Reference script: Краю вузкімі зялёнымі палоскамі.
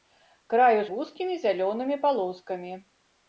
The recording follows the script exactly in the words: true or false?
true